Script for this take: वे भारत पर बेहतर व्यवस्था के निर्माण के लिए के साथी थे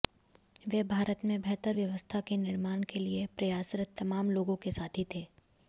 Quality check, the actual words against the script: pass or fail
fail